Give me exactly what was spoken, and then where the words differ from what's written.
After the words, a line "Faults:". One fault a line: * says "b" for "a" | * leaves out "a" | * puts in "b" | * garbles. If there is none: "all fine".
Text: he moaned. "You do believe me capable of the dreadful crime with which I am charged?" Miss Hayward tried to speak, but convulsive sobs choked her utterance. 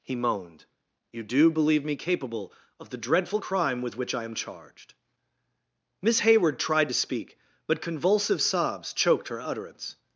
he moaned. "You do believe me capable of the dreadful crime with which I am charged?" Miss Hayward tried to speak, but convulsive sobs choked her utterance.
Faults:
all fine